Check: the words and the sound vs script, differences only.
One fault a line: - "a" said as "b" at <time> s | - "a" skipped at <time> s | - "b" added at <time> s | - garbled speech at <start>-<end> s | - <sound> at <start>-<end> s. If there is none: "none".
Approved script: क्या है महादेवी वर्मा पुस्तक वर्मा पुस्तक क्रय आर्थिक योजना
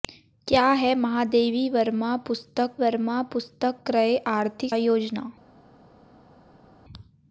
none